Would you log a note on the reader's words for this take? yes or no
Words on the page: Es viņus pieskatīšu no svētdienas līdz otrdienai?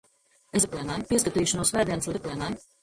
yes